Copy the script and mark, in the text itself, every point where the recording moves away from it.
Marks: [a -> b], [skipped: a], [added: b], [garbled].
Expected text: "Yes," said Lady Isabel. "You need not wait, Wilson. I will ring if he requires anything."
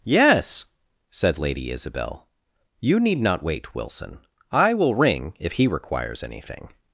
"Yes," said Lady Isabel. "You need not wait, Wilson. I will ring if he requires anything."